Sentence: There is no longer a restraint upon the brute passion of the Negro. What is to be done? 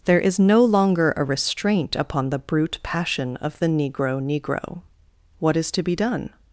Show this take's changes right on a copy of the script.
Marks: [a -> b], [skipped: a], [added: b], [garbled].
There is no longer a restraint upon the brute passion of the Negro. [added: Negro] What is to be done?